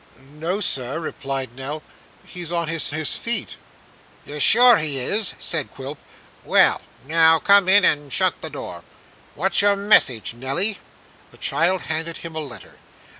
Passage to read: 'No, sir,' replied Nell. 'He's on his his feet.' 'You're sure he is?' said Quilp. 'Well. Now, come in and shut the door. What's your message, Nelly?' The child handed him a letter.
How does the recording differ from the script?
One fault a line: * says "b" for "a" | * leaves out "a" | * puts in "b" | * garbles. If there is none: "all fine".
all fine